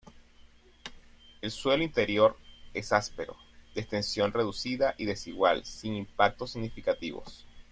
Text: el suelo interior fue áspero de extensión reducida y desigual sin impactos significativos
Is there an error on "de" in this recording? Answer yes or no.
no